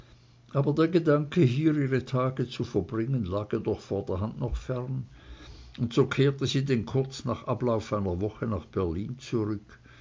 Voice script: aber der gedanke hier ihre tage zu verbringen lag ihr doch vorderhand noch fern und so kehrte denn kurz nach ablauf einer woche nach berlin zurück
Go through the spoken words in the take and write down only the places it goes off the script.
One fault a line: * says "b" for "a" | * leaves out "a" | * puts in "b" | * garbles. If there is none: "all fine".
* puts in "sie"